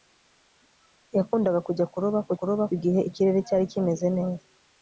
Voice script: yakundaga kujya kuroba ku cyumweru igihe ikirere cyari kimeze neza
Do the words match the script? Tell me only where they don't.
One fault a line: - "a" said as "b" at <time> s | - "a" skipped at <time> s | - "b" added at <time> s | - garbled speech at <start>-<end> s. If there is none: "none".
- "cyumweru" said as "kuroba" at 2.4 s